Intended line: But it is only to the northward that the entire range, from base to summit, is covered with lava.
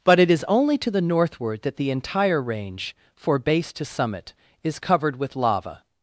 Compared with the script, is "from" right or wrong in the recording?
wrong